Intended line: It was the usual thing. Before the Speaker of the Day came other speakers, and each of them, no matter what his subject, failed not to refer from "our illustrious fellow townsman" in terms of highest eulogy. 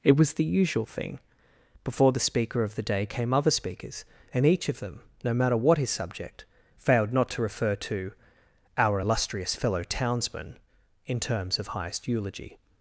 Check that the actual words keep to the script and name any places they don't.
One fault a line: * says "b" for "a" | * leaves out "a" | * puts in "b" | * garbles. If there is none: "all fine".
* says "to" for "from"